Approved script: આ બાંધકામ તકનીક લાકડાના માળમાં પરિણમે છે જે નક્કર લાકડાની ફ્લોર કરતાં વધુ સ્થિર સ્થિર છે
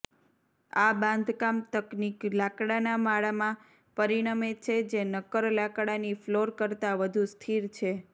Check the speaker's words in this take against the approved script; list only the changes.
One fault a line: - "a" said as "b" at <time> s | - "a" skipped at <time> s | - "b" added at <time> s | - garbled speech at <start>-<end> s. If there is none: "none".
- "સ્થિર" skipped at 7.7 s